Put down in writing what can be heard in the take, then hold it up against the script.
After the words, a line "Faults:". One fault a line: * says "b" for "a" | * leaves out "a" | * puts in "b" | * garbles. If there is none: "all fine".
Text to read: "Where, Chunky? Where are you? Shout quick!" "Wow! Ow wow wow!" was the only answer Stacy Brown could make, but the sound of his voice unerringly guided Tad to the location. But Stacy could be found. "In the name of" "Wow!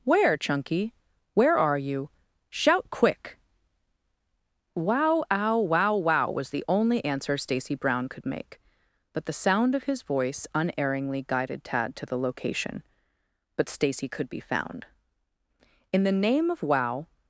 "Where, Chunky? Where are you? Shout quick!" "Wow! Ow wow wow!" was the only answer Stacy Brown could make, but the sound of his voice unerringly guided Tad to the location. But Stacy could be found. "In the name of" "Wow!
Faults:
all fine